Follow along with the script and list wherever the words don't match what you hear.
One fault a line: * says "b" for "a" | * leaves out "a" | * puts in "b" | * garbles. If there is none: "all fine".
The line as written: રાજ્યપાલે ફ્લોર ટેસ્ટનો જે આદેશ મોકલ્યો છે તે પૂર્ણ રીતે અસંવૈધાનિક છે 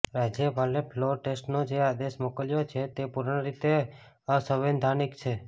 all fine